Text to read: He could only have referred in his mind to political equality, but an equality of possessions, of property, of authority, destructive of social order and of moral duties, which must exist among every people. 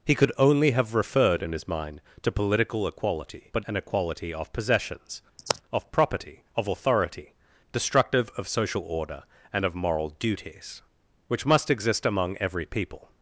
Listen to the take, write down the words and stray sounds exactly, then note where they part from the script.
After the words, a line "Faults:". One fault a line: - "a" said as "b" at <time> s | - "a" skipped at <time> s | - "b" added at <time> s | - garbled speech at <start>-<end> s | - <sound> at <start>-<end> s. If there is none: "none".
He could only have referred in his mind to political equality, but an equality of possessions, of property, of authority, destructive of social order and of moral duties, which must exist among every people.
Faults:
- sigh at 5.4-5.6 s